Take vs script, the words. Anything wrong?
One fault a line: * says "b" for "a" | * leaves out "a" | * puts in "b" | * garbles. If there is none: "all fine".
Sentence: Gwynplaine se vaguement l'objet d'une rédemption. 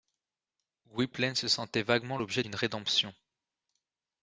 * puts in "sentait"